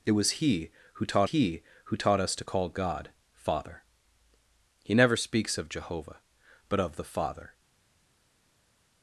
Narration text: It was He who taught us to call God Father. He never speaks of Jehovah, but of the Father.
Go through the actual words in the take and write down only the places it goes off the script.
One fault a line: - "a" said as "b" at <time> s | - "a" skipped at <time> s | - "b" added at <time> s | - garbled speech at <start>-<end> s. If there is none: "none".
- "He who taught" added at 1.2 s